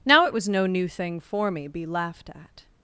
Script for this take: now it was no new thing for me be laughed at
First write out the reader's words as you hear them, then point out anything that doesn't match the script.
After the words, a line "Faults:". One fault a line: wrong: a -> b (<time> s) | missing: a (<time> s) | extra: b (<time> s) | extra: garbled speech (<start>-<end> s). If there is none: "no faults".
now it was no new thing for me be laughed at
Faults:
no faults